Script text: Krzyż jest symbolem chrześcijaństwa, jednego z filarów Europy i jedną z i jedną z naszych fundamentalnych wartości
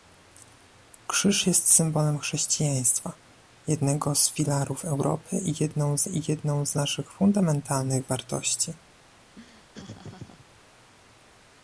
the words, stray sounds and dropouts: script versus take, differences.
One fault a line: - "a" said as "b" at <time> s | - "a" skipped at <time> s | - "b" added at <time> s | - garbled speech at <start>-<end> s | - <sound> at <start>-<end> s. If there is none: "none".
- laugh at 9.4-10.5 s